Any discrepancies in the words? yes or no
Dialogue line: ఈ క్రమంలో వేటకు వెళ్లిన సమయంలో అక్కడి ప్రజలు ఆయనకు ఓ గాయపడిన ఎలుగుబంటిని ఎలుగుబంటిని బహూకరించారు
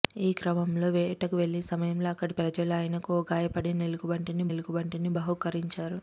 no